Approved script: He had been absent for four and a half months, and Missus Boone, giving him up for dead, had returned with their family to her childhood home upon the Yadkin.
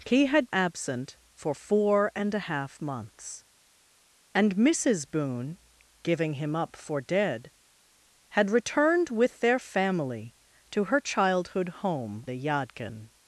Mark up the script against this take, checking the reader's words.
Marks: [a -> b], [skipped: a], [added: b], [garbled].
He had [skipped: been] absent for four and a half months, and Missus Boone, giving him up for dead, had returned with their family to her childhood home [skipped: upon] the Yadkin.